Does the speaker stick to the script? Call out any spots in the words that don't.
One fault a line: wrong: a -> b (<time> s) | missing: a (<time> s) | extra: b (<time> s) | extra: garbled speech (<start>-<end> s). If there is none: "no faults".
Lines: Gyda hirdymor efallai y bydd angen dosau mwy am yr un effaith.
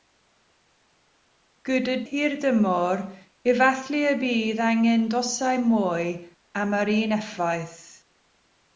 no faults